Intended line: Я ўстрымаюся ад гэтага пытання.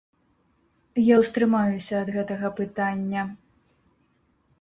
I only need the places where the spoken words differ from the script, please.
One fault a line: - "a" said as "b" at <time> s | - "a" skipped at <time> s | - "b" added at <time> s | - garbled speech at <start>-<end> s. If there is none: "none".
none